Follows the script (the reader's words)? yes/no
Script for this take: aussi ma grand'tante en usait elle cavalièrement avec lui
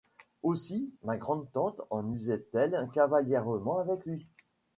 yes